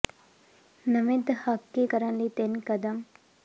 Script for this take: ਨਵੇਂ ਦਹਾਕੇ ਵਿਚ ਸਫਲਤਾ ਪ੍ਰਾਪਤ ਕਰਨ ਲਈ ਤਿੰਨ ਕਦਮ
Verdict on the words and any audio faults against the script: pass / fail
fail